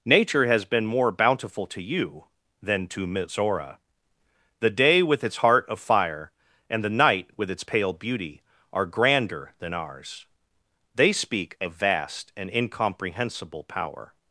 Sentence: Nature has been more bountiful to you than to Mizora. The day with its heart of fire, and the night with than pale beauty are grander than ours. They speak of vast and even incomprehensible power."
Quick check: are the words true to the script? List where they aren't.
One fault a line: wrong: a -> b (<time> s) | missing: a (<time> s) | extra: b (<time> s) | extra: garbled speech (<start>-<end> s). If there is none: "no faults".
wrong: than -> its (7.5 s)
missing: even (12.5 s)